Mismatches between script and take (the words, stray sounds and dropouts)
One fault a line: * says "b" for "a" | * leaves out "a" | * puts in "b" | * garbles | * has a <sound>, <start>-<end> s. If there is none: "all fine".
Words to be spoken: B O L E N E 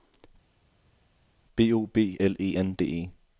* puts in "B"
* puts in "D"